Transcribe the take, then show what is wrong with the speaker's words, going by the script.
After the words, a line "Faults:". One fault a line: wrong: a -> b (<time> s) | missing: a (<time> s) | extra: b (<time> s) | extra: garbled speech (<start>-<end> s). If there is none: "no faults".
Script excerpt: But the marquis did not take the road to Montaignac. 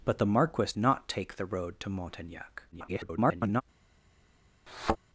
But the marquis not take the road to Montaignac. [garbled]
Faults:
missing: did (0.7 s)
extra: garbled speech (2.7-3.6 s)